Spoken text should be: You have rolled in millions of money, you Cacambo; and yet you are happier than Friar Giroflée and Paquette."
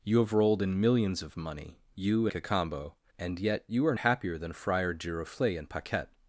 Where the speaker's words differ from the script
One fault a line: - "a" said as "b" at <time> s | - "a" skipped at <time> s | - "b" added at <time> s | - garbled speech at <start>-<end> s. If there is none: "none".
none